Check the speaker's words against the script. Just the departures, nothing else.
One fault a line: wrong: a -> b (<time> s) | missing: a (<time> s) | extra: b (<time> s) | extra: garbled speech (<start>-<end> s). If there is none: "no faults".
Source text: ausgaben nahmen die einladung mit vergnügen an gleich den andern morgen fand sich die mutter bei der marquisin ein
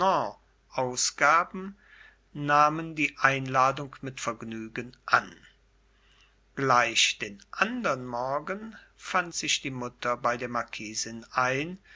no faults